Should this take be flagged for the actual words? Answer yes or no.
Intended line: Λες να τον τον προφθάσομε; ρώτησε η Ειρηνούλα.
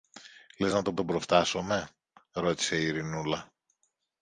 no